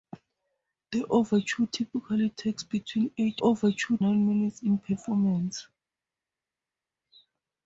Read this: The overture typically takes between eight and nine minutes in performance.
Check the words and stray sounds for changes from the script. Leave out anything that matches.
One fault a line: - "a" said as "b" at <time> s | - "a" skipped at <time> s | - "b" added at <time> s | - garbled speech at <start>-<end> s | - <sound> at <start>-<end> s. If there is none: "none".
- "and" said as "overture" at 3.4 s